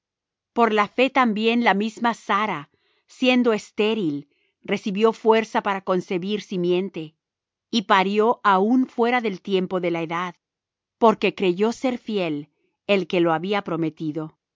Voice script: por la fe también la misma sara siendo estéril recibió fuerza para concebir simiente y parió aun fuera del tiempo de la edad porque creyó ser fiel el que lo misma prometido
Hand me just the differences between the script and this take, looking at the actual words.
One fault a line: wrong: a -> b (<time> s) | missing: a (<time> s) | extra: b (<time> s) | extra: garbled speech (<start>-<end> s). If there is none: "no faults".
wrong: misma -> había (13.3 s)